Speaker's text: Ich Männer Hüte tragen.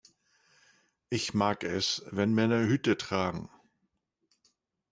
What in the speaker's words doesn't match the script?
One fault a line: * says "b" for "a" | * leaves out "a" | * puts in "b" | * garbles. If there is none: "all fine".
* puts in "mag es wenn"